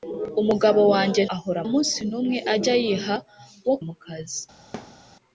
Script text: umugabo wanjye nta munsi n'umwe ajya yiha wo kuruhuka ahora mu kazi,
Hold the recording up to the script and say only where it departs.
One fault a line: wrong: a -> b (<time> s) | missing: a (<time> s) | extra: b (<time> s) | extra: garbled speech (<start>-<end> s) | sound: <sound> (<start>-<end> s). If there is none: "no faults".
wrong: nta -> ahora (1.4 s)
missing: kuruhuka ahora (3.7 s)
sound: thud (4.7-5.0 s)